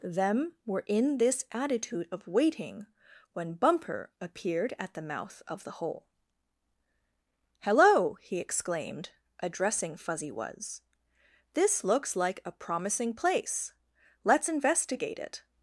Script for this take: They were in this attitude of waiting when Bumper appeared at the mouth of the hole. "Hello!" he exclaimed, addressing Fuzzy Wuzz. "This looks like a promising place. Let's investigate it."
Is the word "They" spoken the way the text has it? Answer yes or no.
no